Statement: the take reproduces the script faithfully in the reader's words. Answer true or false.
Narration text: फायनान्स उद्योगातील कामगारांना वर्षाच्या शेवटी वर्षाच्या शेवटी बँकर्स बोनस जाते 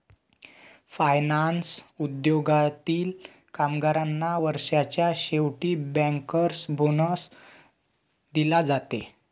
false